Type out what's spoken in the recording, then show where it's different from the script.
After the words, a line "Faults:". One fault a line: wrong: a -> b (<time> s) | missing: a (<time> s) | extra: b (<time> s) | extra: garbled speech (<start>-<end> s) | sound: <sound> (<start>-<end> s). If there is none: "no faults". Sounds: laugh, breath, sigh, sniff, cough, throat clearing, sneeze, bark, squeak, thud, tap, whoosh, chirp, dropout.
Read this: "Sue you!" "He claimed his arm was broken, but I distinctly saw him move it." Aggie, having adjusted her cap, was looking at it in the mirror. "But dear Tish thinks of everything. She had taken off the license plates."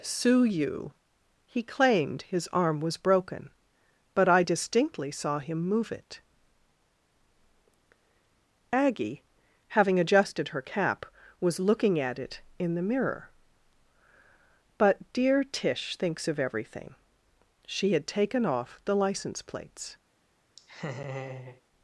"Sue you!" "He claimed his arm was broken, but I distinctly saw him move it." Aggie, having adjusted her cap, was looking at it in the mirror. "But dear Tish thinks of everything. She had taken off the license plates."
Faults:
sound: laugh (20.6-21.6 s)